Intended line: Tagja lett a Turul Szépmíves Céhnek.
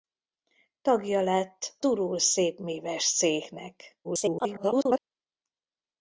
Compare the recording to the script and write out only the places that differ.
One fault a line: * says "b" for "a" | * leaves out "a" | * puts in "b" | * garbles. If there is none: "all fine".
* leaves out "a"
* garbles